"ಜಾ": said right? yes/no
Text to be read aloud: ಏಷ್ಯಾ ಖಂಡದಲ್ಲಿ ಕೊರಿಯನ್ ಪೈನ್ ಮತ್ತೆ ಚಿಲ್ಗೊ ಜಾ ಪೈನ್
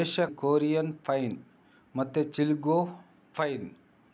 no